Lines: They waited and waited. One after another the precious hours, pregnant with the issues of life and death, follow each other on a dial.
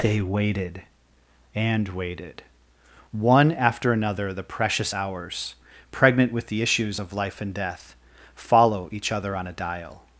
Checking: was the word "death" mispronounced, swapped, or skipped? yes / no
no